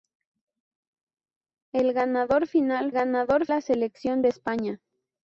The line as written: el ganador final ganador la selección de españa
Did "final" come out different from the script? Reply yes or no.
no